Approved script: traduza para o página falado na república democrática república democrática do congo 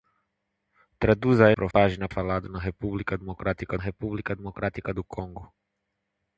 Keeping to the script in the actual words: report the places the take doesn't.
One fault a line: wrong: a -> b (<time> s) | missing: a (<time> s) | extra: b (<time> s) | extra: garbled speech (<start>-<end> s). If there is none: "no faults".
no faults